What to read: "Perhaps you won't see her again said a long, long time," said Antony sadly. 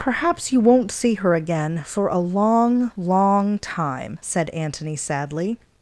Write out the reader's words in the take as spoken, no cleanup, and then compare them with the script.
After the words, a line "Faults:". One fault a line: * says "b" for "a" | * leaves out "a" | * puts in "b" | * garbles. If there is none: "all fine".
"Perhaps you won't see her again for a long, long time," said Antony sadly.
Faults:
* says "for" for "said"